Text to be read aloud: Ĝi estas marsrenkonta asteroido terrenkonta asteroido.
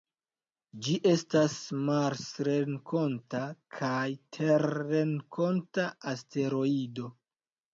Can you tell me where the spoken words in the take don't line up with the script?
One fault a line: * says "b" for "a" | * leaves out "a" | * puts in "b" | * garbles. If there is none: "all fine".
* says "kaj" for "asteroido"